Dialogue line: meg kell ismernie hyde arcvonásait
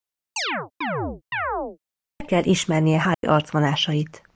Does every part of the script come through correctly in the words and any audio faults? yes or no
no